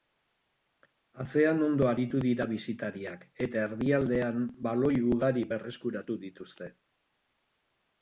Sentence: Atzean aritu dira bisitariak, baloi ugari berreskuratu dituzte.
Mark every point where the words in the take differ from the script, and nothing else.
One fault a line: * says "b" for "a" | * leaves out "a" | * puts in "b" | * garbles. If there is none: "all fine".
* puts in "ondo"
* puts in "eta erdialdean"